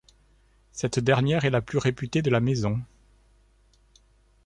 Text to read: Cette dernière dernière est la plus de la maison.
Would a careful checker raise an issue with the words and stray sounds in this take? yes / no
yes